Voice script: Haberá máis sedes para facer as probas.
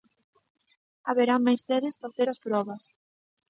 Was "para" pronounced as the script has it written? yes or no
no